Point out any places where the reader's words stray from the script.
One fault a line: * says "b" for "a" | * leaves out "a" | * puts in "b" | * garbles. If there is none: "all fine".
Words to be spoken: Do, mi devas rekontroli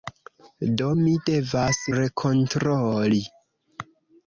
all fine